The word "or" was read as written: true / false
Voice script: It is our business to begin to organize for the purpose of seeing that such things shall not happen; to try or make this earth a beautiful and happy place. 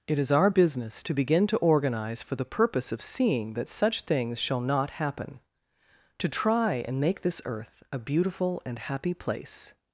false